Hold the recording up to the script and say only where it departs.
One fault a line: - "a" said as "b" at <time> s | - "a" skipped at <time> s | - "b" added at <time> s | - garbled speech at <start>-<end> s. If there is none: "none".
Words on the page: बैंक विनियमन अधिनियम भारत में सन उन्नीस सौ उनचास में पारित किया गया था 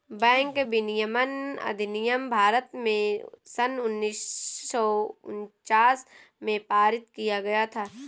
none